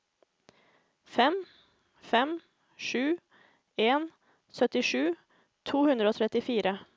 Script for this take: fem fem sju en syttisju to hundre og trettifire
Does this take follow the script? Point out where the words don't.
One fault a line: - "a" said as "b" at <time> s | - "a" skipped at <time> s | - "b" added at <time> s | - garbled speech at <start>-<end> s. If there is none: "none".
none